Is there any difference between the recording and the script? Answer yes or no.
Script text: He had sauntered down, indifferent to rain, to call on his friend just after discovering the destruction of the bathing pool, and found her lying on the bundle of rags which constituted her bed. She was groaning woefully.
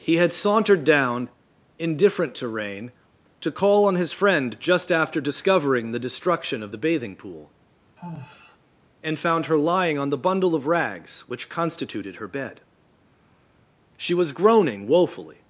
no